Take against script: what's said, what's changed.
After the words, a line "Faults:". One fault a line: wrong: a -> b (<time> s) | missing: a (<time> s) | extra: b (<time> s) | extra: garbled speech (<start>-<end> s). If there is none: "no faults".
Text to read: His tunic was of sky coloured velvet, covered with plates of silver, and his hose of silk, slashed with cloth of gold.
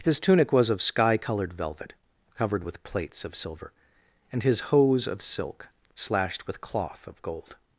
His tunic was of sky coloured velvet, covered with plates of silver, and his hose of silk, slashed with cloth of gold.
Faults:
no faults